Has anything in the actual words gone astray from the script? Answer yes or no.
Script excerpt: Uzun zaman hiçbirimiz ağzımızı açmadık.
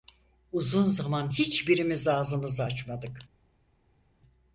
no